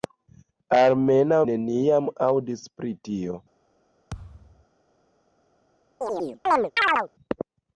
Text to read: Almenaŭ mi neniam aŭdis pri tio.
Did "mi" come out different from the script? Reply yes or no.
yes